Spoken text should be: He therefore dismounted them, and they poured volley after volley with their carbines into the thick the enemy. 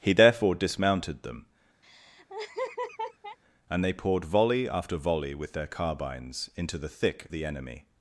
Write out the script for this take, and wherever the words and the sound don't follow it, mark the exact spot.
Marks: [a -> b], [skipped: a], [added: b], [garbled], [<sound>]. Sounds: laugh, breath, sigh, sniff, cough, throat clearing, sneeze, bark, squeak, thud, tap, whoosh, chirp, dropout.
He therefore dismounted them, [laugh] and they poured volley after volley with their carbines into the thick the enemy.